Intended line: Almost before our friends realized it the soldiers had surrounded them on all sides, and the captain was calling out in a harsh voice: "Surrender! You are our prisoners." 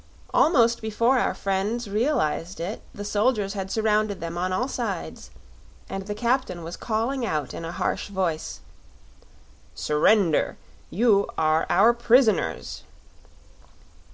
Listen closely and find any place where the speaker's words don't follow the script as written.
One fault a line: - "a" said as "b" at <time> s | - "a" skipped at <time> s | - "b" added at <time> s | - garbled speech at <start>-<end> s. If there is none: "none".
none